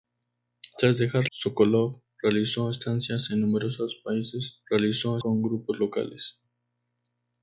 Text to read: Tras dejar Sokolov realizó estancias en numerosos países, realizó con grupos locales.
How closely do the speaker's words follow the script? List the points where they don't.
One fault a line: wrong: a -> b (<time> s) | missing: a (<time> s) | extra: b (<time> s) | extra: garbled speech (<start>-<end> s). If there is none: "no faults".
no faults